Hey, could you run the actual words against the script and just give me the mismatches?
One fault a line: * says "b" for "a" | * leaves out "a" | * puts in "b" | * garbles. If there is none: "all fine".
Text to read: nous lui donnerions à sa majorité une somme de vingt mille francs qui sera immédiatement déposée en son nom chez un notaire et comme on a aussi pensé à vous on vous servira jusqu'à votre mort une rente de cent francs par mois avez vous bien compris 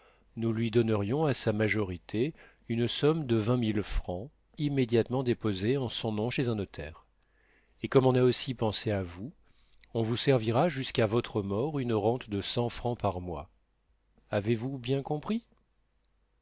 * leaves out "qui sera"